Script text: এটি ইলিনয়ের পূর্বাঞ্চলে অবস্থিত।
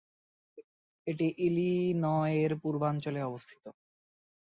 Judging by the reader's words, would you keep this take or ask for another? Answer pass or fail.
pass